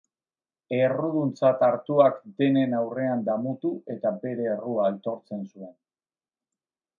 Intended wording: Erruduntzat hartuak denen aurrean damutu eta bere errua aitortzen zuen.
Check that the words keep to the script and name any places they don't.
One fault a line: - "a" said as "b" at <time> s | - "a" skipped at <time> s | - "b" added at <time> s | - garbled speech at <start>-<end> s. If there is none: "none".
none